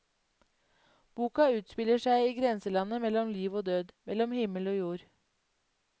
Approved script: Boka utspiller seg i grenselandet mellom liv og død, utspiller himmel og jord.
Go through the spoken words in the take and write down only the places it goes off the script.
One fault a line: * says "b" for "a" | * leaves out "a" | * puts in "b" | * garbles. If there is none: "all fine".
* says "mellom" for "utspiller"